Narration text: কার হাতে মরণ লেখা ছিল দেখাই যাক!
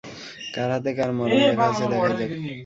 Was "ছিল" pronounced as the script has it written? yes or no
no